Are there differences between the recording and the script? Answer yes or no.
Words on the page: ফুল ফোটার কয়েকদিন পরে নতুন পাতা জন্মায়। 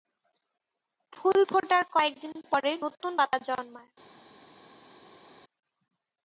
no